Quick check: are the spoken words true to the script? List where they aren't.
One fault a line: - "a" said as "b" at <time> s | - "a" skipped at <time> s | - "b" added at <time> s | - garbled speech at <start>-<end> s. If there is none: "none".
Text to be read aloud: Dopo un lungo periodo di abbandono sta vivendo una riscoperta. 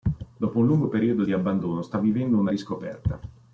none